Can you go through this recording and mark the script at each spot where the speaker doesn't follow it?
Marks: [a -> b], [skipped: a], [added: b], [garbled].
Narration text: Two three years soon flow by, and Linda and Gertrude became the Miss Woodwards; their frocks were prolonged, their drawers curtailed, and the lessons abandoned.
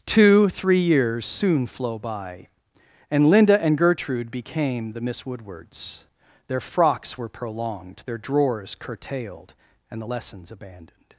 Two three years soon flow by, and Linda and Gertrude became the Miss Woodwards; their frocks were prolonged, their drawers curtailed, and the lessons abandoned.